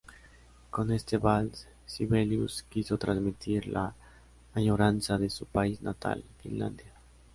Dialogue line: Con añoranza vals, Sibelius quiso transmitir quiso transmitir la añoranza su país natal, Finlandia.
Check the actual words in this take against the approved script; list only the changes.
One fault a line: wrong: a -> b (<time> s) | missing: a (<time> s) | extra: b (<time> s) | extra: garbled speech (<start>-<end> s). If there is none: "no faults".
wrong: añoranza -> este (0.9 s)
missing: quiso transmitir (3.7 s)
extra: de (5.2 s)